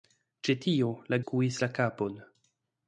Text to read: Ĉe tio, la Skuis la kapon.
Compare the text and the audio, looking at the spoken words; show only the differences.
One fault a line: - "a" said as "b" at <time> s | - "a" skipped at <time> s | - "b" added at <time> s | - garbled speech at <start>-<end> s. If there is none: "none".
none